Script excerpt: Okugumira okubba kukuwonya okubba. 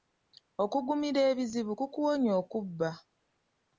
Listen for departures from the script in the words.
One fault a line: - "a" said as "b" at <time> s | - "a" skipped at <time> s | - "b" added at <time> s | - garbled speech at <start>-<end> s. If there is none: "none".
- "okubba" said as "ebizibu" at 1.3 s